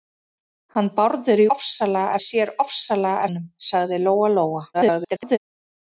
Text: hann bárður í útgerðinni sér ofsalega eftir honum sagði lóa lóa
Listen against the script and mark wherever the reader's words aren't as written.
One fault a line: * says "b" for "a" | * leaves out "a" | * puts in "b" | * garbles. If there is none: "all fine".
* says "ofsalega" for "útgerðinni"
* leaves out "eftir"
* garbles